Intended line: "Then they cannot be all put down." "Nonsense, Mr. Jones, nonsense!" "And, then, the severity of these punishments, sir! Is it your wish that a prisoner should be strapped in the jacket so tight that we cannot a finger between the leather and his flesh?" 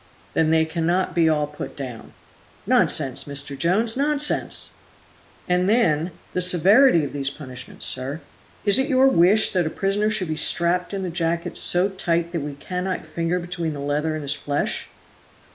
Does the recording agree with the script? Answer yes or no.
yes